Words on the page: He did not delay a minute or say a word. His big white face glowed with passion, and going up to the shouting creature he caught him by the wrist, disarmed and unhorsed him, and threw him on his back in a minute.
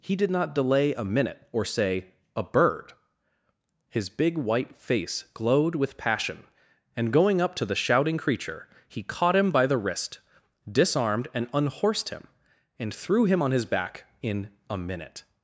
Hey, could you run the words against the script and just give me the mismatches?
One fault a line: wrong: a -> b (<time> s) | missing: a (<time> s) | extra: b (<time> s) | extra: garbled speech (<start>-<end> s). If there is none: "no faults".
wrong: word -> bird (2.4 s)